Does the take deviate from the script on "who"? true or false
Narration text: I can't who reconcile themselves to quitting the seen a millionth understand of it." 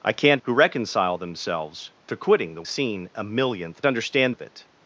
false